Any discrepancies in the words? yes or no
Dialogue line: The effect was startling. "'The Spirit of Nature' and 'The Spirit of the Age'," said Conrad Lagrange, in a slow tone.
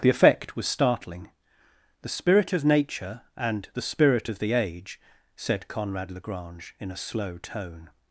no